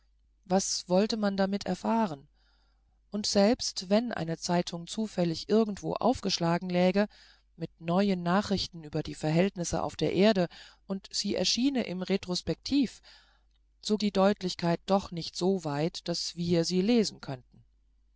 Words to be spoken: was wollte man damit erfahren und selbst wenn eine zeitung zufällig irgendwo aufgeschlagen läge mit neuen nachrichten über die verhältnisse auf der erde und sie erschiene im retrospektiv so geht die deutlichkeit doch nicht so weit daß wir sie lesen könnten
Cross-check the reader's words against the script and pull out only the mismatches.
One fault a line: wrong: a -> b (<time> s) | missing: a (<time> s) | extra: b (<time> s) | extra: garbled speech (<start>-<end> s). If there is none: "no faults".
missing: geht (14.0 s)